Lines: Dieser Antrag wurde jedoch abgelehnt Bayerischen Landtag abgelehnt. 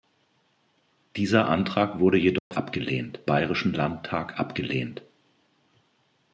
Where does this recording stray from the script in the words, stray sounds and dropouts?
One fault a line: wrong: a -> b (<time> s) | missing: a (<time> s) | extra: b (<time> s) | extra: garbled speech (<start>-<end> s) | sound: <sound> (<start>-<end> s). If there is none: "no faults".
sound: dropout (2.4-2.5 s)